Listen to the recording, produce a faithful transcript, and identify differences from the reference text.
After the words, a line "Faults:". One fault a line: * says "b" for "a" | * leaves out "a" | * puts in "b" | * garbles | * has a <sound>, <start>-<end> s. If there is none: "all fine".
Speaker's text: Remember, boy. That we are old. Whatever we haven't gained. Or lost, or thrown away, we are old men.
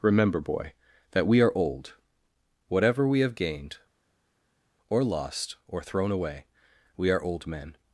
Remember, boy. That we are old. Whatever we have gained. Or lost, or thrown away, we are old men.
Faults:
* says "have" for "haven't"